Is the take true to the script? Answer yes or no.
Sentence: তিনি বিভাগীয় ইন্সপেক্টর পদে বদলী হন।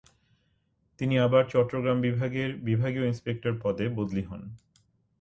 no